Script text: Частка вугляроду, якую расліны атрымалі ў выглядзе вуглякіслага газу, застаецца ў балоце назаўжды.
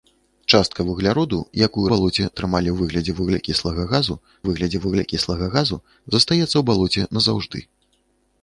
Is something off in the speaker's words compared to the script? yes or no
yes